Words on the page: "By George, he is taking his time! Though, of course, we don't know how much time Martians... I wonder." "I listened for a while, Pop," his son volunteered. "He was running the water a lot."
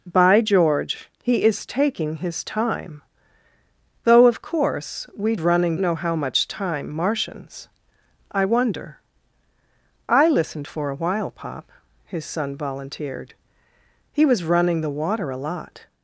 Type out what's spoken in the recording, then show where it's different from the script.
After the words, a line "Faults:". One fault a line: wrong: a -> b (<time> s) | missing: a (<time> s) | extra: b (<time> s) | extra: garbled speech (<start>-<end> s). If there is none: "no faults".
"By George, he is taking his time! Though, of course, we running know how much time Martians... I wonder." "I listened for a while, Pop," his son volunteered. "He was running the water a lot."
Faults:
wrong: don't -> running (5.4 s)